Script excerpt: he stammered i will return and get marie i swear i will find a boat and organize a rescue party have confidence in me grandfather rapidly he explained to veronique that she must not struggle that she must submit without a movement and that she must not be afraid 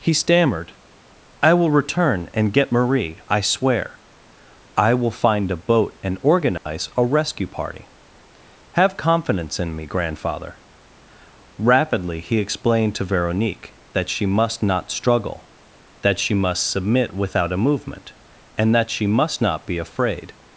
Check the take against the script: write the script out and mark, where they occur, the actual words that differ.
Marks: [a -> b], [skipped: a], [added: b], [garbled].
he stammered i will return and get marie i swear i will find a boat and organize a rescue party have confidence in me grandfather rapidly he explained to veronique that she must not struggle that she must submit without a movement and that she must not be afraid